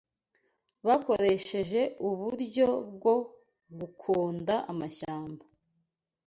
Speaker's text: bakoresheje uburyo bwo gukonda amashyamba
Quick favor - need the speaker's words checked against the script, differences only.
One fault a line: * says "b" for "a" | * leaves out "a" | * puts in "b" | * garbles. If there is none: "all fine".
all fine